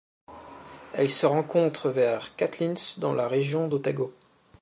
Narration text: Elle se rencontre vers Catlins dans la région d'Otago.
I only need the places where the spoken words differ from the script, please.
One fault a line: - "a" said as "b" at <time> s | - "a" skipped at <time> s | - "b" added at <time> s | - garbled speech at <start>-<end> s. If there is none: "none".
none